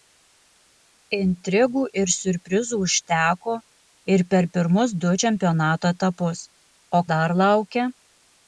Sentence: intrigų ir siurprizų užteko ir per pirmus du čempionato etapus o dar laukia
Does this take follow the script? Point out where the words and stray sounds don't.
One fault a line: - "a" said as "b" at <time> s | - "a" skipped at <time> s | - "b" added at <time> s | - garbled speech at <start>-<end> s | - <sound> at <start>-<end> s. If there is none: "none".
none